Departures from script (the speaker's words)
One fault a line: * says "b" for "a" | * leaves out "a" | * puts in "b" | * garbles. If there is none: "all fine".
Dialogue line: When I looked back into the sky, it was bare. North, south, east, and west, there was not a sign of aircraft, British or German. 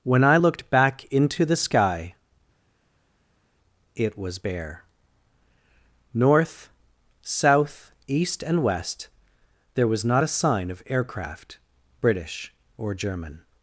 all fine